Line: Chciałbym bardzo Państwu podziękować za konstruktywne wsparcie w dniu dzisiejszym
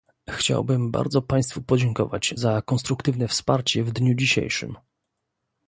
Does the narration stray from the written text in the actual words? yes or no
no